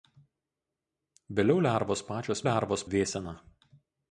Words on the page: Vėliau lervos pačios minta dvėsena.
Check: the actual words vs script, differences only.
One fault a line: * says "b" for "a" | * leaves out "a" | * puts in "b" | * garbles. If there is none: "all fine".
* says "lervos" for "minta"